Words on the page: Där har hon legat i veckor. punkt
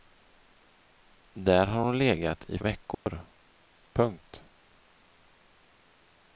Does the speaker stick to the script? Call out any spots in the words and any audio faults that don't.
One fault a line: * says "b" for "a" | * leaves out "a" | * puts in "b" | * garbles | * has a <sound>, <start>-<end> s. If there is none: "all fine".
* has a dropout, 2.9-3.1 s